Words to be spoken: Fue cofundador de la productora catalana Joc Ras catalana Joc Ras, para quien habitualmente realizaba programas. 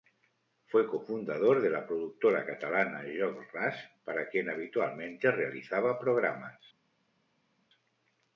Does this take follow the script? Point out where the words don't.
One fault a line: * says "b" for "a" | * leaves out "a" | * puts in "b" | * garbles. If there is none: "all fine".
* leaves out "catalana Joc Ras"